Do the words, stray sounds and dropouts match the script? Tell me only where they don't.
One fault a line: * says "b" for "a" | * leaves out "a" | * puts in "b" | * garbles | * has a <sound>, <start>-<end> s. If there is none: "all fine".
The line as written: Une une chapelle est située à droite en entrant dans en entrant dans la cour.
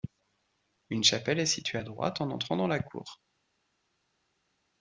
* leaves out "une"
* leaves out "en entrant dans"